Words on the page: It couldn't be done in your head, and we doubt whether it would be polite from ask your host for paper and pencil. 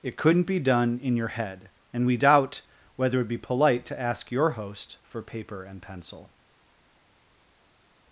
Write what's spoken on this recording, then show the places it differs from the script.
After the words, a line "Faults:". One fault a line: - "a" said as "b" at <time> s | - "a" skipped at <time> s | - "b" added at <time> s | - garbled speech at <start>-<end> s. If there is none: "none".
It couldn't be done in your head, and we doubt whether it would be polite to ask your host for paper and pencil.
Faults:
- "from" said as "to" at 3.9 s